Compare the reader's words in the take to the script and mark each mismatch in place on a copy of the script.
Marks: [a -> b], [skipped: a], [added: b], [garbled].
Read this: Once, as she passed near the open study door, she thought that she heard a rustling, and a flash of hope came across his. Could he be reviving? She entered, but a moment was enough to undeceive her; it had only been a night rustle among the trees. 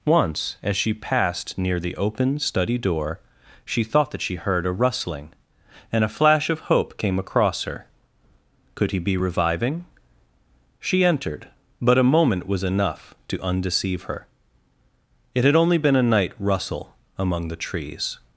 Once, as she passed near the open study door, she thought that she heard a rustling, and a flash of hope came across [his. -> her] Could he be reviving? She entered, but a moment was enough to undeceive her; it had only been a night rustle among the trees.